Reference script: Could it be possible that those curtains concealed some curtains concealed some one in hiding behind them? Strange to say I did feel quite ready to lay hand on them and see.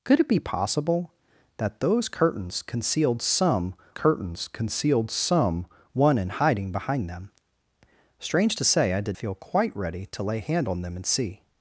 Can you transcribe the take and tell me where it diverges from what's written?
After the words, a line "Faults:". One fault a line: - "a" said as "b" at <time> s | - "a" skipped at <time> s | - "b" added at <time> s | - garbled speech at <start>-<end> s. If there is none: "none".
Could it be possible that those curtains concealed some curtains concealed some one in hiding behind them? Strange to say I did feel quite ready to lay hand on them and see.
Faults:
none